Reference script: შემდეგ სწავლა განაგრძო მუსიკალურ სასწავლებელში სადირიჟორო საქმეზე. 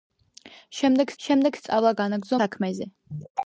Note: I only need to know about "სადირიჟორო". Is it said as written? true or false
false